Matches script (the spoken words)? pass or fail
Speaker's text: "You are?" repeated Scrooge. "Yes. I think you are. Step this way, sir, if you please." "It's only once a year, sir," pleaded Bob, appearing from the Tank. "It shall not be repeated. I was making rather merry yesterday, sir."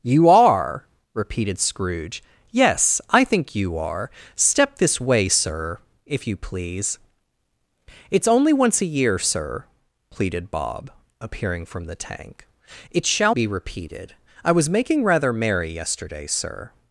fail